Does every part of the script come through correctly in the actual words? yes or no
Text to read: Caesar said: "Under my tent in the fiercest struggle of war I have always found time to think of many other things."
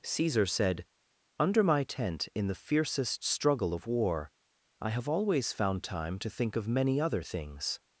yes